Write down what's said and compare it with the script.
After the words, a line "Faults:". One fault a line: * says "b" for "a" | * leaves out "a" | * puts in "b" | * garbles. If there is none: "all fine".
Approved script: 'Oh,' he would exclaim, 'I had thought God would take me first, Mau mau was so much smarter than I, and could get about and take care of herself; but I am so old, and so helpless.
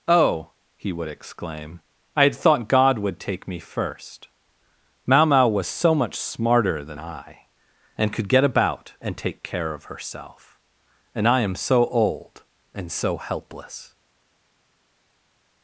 'Oh,' he would exclaim, 'I had thought God would take me first, Mau mau was so much smarter than I, and could get about and take care of herself; and I am so old, and so helpless.
Faults:
* says "and" for "but"